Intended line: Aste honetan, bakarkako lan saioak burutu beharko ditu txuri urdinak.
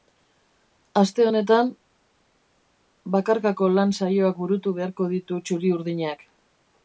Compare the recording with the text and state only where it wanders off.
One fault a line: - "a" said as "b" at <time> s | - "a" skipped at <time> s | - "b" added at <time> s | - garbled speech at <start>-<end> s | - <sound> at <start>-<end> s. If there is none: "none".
none